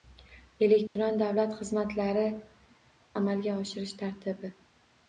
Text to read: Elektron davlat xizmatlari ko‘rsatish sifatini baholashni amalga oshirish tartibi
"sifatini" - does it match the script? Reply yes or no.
no